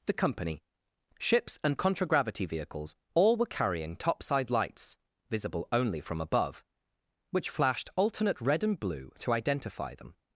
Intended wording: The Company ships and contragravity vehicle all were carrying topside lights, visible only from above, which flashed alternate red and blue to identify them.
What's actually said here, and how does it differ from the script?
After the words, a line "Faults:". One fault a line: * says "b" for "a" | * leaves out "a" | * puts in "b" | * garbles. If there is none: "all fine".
The Company ships and contragravity vehicles all were carrying topside lights, visible only from above, which flashed alternate red and blue to identify them.
Faults:
* says "vehicles" for "vehicle"